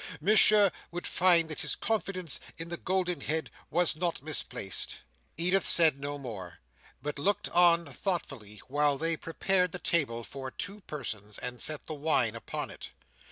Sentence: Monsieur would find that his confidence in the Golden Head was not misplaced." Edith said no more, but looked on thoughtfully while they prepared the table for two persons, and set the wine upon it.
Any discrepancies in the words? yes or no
no